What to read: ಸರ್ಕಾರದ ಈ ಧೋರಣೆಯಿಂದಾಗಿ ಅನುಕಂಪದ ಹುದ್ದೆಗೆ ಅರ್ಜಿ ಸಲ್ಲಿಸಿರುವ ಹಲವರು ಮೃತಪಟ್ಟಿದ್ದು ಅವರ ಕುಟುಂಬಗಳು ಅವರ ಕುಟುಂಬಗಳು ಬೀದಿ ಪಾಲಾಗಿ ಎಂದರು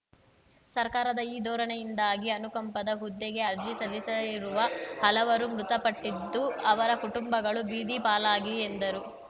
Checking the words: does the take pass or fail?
fail